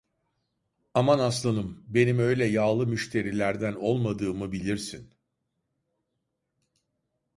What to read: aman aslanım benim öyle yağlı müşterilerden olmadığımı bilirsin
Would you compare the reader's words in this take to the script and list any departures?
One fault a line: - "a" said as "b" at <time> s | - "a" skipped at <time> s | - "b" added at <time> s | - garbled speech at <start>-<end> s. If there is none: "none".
none